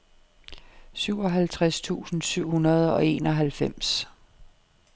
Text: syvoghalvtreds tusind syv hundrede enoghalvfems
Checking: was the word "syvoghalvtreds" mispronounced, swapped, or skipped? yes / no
no